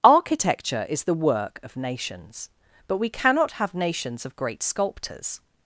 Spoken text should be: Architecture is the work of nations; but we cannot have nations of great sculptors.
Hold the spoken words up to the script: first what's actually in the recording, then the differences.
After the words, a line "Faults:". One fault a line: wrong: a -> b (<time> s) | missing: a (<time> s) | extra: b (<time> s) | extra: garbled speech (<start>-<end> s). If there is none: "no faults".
Architecture is the work of nations; but we cannot have nations of great sculptors.
Faults:
no faults